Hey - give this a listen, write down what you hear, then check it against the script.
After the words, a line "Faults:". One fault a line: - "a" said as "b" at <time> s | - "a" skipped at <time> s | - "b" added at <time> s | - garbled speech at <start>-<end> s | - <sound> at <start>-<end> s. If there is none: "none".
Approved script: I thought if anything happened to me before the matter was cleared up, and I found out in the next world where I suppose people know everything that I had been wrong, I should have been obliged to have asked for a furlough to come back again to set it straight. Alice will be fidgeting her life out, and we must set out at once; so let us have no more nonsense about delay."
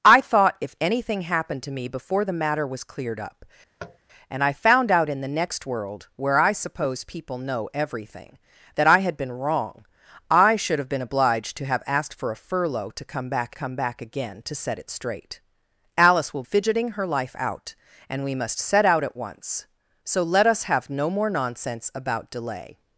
I thought if anything happened to me before the matter was cleared up, and I found out in the next world where I suppose people know everything that I had been wrong, I should have been obliged to have asked for a furlough to come back come back again to set it straight. Alice will fidgeting her life out, and we must set out at once; so let us have no more nonsense about delay."
Faults:
- tap at 3.8-4.0 s
- "come back" added at 13.5 s
- "be" skipped at 16.4 s